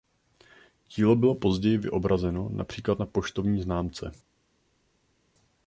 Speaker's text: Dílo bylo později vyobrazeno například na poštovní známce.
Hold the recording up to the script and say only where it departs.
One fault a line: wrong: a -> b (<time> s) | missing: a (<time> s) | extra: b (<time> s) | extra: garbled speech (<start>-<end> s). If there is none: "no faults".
no faults